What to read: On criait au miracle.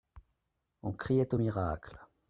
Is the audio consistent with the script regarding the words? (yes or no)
yes